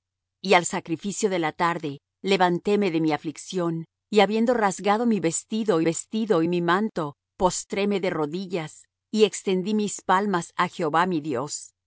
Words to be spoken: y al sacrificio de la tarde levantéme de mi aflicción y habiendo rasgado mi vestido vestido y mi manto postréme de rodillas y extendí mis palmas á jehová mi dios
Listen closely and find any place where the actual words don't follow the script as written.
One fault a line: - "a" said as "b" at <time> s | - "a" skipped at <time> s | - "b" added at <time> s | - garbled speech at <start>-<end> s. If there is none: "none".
none